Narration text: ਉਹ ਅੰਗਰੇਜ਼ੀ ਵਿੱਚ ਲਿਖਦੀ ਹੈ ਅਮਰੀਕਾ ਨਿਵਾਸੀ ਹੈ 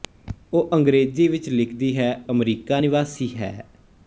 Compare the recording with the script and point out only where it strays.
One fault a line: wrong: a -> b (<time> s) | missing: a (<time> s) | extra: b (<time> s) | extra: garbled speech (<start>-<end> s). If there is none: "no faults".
no faults